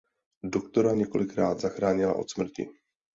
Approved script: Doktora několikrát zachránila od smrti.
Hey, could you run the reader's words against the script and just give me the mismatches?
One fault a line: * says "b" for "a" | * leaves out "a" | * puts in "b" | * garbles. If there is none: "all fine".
all fine